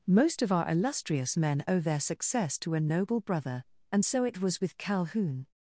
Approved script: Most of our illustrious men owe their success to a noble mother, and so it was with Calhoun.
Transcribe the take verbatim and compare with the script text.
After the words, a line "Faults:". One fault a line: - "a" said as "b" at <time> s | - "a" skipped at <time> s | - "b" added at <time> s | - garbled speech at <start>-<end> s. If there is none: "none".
Most of our illustrious men owe their success to a noble brother, and so it was with Calhoun.
Faults:
- "mother" said as "brother" at 3.2 s